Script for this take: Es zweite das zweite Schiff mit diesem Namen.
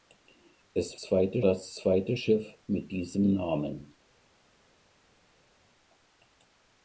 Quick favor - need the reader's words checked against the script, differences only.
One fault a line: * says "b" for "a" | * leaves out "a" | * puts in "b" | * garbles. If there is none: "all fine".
all fine